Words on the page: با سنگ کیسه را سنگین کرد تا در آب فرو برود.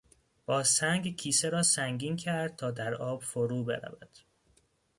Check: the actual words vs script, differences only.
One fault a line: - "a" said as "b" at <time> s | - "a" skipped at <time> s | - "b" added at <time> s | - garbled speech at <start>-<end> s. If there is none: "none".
none